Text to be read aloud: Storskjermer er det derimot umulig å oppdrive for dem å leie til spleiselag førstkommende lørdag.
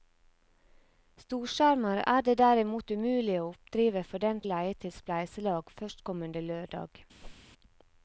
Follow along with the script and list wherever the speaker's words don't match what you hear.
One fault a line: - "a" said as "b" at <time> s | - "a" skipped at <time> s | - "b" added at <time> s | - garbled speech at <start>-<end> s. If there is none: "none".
none